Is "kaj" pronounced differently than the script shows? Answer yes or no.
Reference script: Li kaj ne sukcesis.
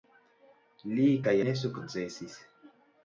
no